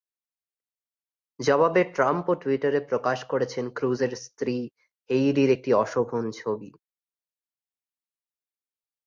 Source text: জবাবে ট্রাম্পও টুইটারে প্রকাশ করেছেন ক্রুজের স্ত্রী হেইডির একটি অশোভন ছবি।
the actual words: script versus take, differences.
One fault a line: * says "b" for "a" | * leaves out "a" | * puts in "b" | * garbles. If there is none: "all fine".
all fine